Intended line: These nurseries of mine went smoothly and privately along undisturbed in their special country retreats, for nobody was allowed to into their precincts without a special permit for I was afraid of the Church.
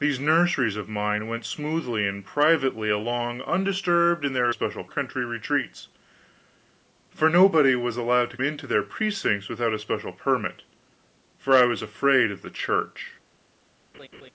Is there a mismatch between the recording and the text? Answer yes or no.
no